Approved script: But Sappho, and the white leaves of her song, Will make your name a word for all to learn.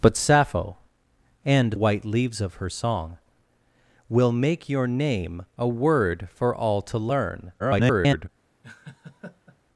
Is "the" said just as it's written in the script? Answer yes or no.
no